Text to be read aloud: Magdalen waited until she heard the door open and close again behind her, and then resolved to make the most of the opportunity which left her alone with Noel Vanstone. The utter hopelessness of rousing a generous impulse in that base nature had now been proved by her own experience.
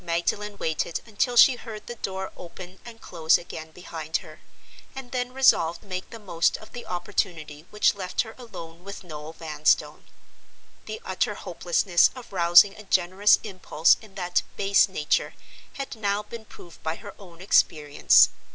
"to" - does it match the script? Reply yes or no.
no